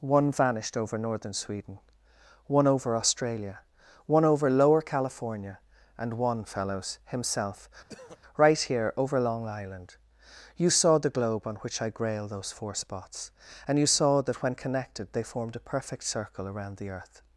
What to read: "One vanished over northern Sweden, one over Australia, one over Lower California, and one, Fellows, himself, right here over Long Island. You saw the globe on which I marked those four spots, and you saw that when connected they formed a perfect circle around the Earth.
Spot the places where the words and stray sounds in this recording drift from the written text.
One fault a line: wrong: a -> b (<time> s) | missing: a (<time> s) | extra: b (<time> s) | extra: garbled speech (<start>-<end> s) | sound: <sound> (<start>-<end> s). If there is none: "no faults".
sound: throat clearing (7.9-8.2 s)
wrong: marked -> grail (11.9 s)